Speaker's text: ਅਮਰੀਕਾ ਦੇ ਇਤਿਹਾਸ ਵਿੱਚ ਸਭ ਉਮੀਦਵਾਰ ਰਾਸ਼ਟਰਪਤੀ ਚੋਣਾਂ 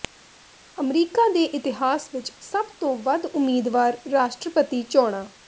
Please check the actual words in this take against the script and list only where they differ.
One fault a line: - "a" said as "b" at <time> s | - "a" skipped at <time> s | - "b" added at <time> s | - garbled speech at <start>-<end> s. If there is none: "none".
- "ਤੋਂ ਵੱਧ" added at 2.8 s